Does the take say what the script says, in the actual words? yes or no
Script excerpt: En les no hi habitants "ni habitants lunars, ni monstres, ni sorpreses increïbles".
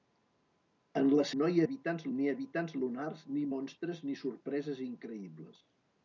yes